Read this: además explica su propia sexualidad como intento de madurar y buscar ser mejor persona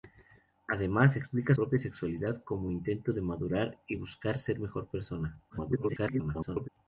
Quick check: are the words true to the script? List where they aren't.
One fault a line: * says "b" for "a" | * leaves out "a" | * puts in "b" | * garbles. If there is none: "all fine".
* leaves out "su"
* garbles